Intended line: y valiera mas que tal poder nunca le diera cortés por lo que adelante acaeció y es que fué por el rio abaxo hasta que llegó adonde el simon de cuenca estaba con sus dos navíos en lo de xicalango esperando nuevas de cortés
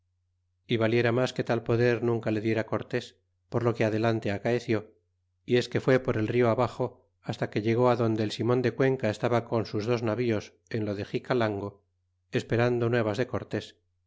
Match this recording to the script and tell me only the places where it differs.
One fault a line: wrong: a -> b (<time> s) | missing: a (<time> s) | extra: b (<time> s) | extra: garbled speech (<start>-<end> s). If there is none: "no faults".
no faults